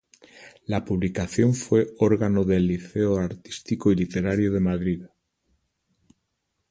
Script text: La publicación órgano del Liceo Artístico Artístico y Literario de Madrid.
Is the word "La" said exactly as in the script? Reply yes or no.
yes